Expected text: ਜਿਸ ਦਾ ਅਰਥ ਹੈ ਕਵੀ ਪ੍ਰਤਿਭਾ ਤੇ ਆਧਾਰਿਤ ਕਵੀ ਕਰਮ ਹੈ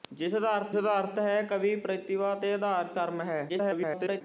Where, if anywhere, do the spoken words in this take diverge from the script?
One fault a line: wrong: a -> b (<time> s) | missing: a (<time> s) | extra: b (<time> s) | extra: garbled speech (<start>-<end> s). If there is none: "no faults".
extra: ਦਾ ਅਰਥ (0.7 s)
missing: ਕਵੀ (3.0 s)
extra: garbled speech (3.5-4.2 s)